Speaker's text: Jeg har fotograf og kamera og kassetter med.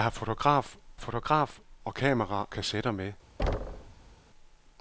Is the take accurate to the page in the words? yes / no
no